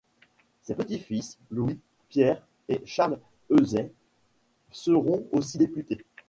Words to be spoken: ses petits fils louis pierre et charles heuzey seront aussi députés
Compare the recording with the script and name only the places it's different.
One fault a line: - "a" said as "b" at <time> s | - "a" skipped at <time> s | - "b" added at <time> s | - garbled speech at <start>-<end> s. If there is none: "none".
none